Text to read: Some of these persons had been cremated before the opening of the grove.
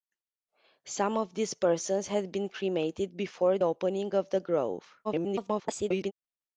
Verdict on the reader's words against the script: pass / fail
fail